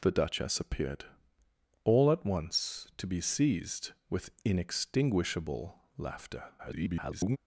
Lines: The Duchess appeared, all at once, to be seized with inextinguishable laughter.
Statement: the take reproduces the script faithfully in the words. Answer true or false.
false